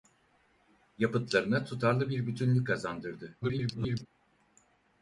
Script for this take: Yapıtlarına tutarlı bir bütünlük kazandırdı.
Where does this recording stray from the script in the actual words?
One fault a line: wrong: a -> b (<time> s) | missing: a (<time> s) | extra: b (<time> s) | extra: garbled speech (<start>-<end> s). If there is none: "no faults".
extra: garbled speech (3.4-4.1 s)